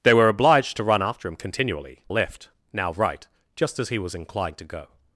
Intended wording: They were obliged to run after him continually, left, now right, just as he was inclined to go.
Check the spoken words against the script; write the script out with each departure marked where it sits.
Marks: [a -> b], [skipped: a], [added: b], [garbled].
They were obliged to run after him continually, left, now right, just as he was inclined to go.